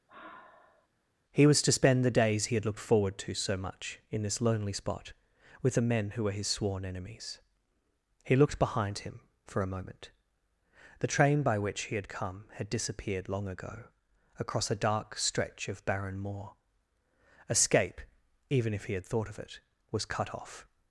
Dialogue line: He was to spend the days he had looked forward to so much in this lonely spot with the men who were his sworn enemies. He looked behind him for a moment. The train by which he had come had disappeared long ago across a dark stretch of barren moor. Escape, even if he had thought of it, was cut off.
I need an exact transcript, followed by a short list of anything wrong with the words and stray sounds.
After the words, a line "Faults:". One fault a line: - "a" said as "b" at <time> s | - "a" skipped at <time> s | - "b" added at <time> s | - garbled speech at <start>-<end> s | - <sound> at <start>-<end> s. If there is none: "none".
He was to spend the days he had looked forward to so much in this lonely spot with the men who were his sworn enemies. He looked behind him for a moment. The train by which he had come had disappeared long ago across a dark stretch of barren moor. Escape, even if he had thought of it, was cut off.
Faults:
- sigh at 0.1-0.9 s